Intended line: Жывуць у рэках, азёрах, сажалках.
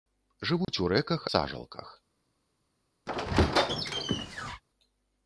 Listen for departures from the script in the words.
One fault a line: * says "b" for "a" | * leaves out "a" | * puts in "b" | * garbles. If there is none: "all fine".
* leaves out "азёрах"